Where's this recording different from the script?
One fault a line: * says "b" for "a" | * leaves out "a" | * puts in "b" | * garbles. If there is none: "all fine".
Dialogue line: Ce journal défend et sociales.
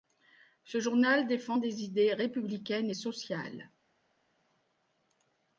* puts in "des idées républicaines"